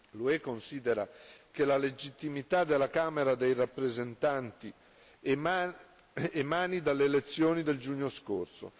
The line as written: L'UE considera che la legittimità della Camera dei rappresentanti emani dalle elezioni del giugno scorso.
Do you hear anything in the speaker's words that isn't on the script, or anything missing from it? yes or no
no